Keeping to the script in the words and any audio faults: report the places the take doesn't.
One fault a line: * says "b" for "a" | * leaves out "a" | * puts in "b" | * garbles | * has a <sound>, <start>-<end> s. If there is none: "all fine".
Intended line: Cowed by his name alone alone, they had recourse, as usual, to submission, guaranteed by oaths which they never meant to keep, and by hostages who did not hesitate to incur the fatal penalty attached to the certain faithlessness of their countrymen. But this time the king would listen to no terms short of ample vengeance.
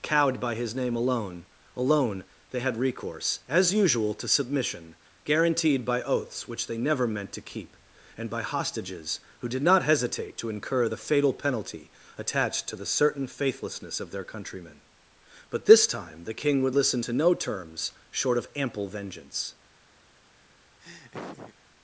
* has a laugh, 20.8-21.5 s